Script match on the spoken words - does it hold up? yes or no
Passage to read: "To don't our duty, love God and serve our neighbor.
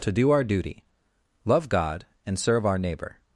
no